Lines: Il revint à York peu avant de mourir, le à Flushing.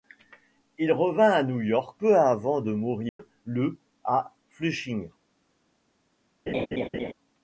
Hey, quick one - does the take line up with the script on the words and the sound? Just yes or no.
no